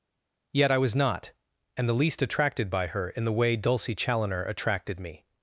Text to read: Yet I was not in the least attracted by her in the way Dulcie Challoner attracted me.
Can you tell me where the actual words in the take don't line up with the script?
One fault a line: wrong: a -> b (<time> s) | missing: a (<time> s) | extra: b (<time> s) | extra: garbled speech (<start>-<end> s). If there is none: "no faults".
wrong: in -> and (1.8 s)